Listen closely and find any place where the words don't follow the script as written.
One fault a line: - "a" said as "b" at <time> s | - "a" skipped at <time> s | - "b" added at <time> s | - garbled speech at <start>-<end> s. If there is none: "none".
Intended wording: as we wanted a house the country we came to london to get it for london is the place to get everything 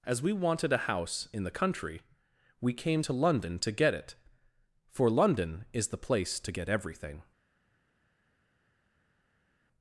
- "in" added at 1.3 s